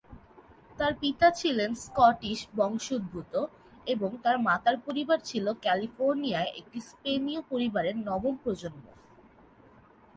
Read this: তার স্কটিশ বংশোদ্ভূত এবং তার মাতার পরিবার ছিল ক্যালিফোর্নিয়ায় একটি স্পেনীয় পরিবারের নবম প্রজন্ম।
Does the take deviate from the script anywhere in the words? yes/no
yes